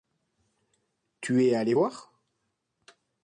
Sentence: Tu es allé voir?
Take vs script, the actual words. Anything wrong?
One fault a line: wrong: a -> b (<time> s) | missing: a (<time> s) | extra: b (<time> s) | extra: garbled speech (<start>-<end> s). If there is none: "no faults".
no faults